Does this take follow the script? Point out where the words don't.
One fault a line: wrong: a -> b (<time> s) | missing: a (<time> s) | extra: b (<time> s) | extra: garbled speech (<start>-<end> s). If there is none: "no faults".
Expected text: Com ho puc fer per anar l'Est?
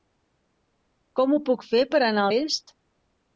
no faults